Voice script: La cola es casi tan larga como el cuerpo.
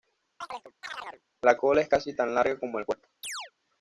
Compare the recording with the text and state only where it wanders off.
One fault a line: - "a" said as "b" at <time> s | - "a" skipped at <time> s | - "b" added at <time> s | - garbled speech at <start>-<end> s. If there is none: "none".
none